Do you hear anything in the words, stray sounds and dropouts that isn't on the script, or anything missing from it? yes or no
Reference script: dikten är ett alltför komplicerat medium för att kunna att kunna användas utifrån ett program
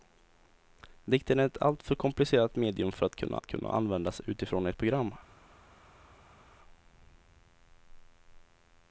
no